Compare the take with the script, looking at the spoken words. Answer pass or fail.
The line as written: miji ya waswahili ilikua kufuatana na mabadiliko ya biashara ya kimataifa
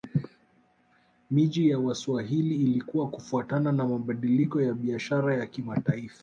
pass